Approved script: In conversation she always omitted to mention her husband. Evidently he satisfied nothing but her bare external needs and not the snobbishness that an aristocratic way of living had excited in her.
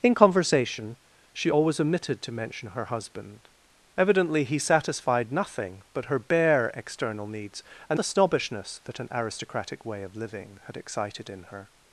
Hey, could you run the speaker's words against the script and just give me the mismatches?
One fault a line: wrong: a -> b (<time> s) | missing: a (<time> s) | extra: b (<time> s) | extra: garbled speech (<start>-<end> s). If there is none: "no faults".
missing: not (8.0 s)